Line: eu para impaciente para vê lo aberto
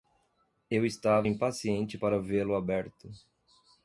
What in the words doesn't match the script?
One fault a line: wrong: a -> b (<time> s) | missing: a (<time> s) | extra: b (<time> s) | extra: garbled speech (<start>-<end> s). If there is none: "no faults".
wrong: para -> estava (0.8 s)